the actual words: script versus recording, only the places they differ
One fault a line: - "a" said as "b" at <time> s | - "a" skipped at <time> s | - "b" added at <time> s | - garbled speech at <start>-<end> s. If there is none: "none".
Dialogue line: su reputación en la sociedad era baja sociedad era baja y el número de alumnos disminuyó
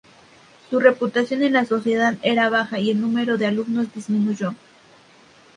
- "sociedad era baja" skipped at 2.8 s